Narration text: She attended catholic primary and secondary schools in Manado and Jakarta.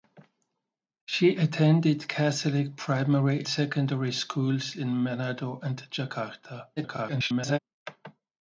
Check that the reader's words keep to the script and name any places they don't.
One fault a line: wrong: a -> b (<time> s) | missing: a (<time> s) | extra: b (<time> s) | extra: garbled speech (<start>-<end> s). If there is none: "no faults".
missing: and (3.4 s)
extra: garbled speech (6.8-7.6 s)